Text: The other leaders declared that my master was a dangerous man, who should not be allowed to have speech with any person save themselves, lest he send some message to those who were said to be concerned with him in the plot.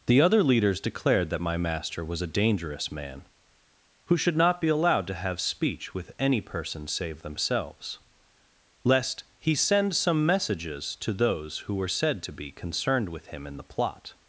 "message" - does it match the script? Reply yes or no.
no